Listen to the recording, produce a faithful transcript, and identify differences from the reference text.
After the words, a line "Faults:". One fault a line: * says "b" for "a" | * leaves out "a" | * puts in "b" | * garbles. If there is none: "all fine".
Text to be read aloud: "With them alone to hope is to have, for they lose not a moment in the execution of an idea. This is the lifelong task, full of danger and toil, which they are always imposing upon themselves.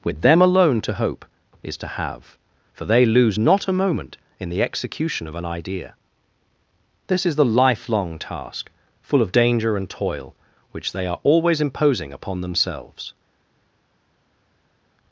"With them alone to hope is to have, for they lose not a moment in the execution of an idea. This is the lifelong task, full of danger and toil, which they are always imposing upon themselves.
Faults:
all fine